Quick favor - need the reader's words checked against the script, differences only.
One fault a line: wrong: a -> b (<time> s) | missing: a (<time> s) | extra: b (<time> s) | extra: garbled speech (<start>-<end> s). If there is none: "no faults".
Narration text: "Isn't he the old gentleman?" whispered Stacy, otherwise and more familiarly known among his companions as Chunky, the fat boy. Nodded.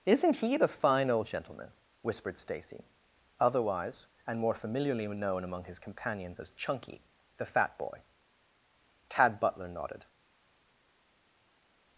extra: fine (0.7 s)
extra: Tad Butler (9.1 s)